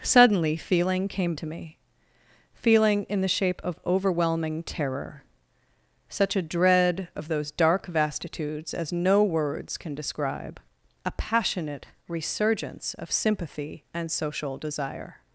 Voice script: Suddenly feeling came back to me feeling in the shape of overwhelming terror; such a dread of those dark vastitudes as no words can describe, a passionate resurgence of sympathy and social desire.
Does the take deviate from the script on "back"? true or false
true